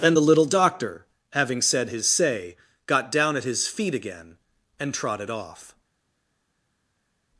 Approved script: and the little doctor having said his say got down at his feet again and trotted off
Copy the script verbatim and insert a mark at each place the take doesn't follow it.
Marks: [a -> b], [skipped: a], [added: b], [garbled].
and the little doctor having said his say got down at his feet again and trotted off